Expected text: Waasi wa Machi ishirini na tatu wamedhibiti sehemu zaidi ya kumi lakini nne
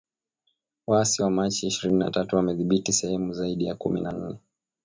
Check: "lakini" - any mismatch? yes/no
yes